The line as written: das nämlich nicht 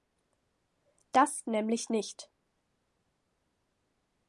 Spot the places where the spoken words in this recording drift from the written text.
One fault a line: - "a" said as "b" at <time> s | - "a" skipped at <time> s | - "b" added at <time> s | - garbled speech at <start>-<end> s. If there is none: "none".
none